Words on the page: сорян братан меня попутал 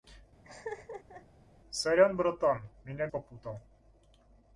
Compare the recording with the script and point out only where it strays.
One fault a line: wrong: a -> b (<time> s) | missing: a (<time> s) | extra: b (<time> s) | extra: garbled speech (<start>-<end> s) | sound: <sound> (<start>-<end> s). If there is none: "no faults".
sound: laugh (0.4-1.3 s)